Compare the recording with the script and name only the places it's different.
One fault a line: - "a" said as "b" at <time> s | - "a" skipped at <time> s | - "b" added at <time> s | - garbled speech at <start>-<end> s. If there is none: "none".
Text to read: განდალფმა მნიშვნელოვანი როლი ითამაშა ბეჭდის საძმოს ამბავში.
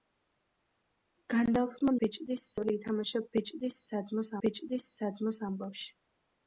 - "მნიშვნელოვანი" said as "ბეჭდის" at 2.0 s
- "ბეჭდის საძმოს" added at 4.4 s